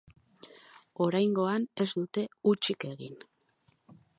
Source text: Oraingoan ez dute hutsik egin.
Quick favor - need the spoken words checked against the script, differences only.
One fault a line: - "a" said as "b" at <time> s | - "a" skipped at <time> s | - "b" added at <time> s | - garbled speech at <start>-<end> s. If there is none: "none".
none